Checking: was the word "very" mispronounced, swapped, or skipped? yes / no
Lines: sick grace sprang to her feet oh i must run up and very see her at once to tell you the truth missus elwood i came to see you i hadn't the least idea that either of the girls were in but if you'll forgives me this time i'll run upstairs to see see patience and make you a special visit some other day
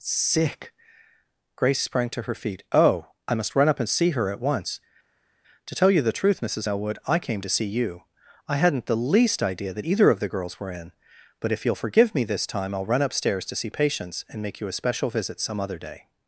yes